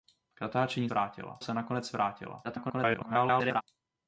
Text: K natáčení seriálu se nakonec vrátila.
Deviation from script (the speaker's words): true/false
true